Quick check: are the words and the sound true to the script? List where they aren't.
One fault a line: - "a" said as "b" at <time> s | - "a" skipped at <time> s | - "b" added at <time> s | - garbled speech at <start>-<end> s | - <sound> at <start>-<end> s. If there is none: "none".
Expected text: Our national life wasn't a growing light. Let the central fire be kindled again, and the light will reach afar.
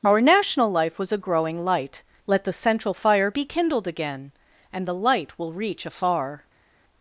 - "wasn't" said as "was" at 1.0 s